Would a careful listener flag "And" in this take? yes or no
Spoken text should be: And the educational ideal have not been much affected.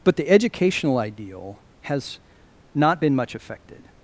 yes